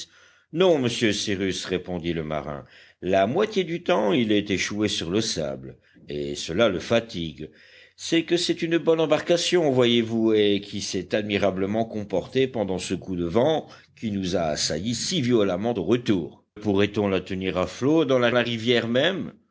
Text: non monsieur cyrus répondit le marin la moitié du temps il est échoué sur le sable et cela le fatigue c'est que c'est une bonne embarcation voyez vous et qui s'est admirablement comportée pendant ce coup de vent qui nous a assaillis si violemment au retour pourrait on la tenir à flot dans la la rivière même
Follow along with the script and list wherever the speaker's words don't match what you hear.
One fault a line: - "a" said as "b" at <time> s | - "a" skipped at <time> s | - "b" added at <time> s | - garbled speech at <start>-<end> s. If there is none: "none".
none